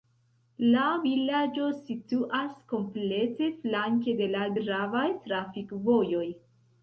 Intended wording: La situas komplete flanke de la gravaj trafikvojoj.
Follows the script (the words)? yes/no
no